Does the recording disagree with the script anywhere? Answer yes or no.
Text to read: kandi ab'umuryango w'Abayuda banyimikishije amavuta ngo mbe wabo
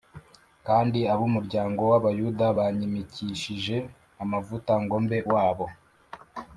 no